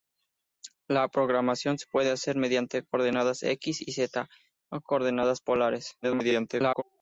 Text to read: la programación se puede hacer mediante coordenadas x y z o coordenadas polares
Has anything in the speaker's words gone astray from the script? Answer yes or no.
yes